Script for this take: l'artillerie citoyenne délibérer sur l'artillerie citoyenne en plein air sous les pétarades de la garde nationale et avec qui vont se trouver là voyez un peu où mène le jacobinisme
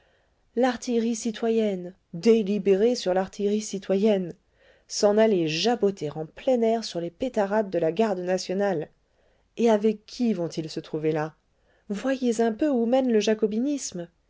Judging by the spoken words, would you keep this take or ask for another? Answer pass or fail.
fail